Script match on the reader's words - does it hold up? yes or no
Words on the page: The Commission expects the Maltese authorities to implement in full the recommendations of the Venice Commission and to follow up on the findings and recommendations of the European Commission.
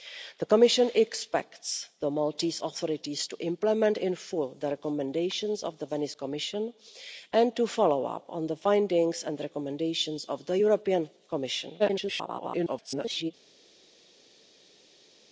no